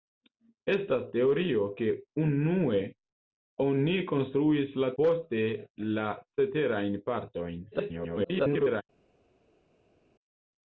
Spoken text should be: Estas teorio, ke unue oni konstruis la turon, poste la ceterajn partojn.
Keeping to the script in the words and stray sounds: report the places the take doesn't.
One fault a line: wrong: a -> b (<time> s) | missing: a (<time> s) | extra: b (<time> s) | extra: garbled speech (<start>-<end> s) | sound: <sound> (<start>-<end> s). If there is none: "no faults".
missing: turon (4.9 s)
extra: garbled speech (7.7-8.8 s)